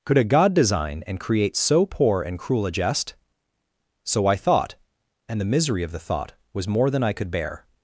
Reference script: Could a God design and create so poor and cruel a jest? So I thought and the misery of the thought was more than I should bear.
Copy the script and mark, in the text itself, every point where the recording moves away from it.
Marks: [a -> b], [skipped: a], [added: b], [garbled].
Could a God design and create so poor and cruel a jest? So I thought and the misery of the thought was more than I [should -> could] bear.